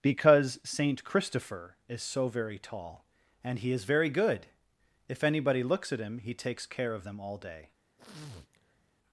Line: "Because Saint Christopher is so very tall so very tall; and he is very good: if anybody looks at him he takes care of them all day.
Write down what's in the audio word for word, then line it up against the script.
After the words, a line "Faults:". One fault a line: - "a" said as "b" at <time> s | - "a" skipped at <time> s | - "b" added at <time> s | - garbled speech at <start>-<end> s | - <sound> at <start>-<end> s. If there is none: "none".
"Because Saint Christopher is so very tall; and he is very good: if anybody looks at him he takes care of them all day.
Faults:
- "so very tall" skipped at 3.0 s
- sniff at 8.0-8.9 s